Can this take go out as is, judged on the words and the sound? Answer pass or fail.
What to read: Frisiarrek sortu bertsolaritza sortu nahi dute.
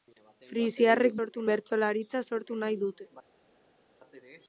pass